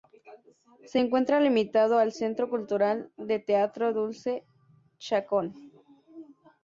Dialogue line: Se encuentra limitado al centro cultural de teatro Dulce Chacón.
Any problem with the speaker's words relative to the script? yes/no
no